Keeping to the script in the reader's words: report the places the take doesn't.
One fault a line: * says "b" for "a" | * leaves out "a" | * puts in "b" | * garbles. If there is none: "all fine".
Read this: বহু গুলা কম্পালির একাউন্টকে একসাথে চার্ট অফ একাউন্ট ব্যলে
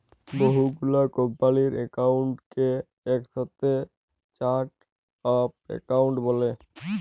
all fine